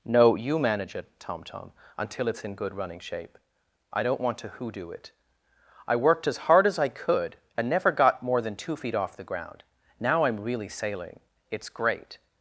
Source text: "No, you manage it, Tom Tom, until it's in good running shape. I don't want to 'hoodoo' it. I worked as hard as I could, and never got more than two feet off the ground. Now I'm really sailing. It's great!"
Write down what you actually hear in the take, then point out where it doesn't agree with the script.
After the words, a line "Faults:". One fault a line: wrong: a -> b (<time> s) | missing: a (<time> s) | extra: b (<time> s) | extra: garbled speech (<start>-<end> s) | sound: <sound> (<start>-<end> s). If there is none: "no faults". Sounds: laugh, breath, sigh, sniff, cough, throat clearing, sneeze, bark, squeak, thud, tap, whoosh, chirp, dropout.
"No, you manage it, Tom Tom, until it's in good running shape. I don't want to 'hoodoo' it. I worked as hard as I could, and never got more than two feet off the ground. Now I'm really sailing. It's great!"
Faults:
no faults